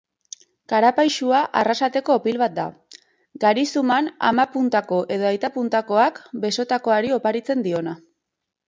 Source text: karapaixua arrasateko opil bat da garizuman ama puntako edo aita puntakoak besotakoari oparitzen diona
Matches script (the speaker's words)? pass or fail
pass